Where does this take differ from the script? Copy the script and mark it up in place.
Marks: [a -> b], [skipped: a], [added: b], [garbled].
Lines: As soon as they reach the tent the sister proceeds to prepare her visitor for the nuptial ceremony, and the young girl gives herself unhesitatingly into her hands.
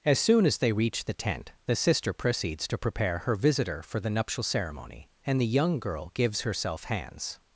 As soon as they reach the tent the sister proceeds to prepare her visitor for the nuptial ceremony, and the young girl gives herself [skipped: unhesitatingly into her] hands.